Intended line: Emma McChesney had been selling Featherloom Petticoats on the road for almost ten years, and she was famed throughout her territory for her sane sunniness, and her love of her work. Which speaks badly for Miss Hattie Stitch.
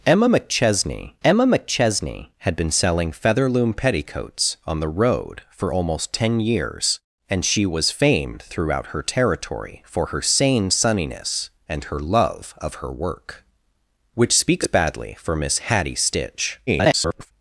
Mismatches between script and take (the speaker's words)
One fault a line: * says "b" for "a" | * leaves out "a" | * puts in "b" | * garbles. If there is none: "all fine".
* puts in "emma McChesney"
* garbles